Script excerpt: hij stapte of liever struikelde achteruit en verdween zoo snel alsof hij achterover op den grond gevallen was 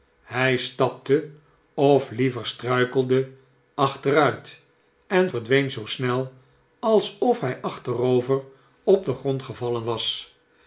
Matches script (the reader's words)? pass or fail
pass